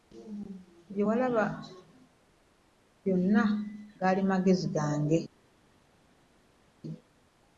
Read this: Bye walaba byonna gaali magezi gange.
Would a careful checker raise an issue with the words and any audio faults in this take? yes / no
no